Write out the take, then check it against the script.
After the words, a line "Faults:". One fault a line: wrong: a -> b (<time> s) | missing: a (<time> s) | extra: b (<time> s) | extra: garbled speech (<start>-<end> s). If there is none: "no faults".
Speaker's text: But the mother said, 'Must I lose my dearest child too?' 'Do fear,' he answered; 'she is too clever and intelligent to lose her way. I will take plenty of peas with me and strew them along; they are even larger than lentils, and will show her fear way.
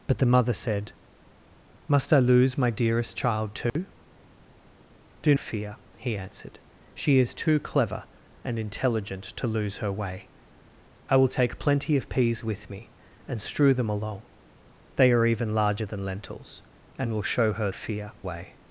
But the mother said, 'Must I lose my dearest child too?' 'Do fear,' he answered; 'she is too clever and intelligent to lose her way. I will take plenty of peas with me and strew them along; they are even larger than lentils, and will show her fear way.
Faults:
no faults